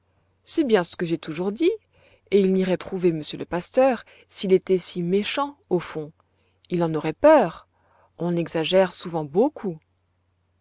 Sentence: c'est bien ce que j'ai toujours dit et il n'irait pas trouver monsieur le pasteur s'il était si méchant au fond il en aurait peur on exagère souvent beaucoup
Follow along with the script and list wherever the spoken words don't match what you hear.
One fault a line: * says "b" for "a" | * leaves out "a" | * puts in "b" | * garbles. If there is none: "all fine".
* leaves out "pas"